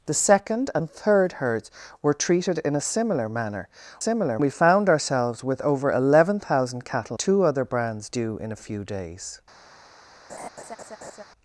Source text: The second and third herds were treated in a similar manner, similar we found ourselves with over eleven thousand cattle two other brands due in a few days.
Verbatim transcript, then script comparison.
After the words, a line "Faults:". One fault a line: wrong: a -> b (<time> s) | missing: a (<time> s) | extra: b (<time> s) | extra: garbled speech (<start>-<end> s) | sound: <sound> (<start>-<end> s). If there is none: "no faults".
The second and third herds were treated in a similar manner, similar we found ourselves with over eleven thousand cattle two other brands due in a few days.
Faults:
sound: laugh (10.3-11.2 s)